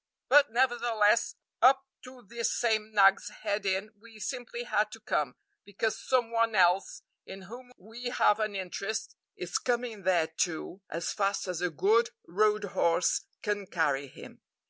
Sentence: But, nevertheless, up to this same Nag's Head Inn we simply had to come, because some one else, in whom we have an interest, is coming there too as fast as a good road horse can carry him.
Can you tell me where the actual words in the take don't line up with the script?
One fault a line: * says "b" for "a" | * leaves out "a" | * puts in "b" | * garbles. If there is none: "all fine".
all fine